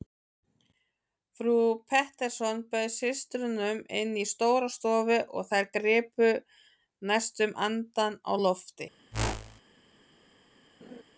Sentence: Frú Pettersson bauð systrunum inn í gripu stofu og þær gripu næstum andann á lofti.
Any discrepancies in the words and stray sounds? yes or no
yes